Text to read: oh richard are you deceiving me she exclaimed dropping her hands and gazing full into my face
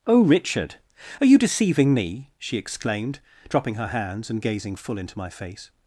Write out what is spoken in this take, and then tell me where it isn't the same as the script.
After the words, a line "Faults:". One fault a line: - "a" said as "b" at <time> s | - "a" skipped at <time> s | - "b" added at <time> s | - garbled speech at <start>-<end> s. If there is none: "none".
oh richard are you deceiving me she exclaimed dropping her hands and gazing full into my face
Faults:
none